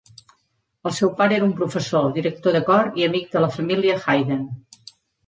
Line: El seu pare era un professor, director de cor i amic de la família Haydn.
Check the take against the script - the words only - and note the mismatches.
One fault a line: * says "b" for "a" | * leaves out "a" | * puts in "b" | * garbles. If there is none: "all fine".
all fine